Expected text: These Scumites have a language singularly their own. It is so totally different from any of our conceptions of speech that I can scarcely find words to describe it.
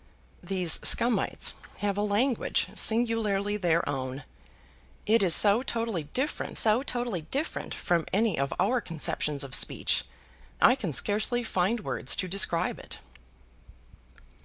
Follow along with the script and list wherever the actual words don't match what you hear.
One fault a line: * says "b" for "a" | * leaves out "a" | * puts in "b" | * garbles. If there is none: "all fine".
* puts in "so totally different"
* leaves out "that"